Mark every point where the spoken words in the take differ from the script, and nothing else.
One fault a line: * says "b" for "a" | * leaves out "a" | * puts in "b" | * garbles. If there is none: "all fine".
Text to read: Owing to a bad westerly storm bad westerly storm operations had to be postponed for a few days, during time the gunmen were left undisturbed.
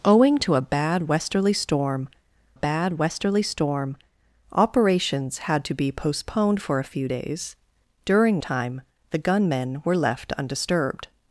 all fine